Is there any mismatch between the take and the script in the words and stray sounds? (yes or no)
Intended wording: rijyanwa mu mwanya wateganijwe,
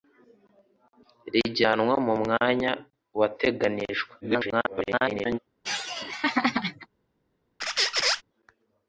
yes